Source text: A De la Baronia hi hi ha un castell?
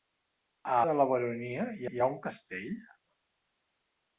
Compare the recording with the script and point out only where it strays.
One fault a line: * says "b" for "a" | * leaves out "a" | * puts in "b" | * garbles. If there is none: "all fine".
all fine